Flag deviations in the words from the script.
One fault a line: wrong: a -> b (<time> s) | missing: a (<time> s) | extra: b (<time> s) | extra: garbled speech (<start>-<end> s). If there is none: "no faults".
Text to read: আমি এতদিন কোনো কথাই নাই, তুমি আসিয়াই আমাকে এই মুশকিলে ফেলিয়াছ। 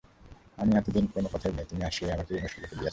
no faults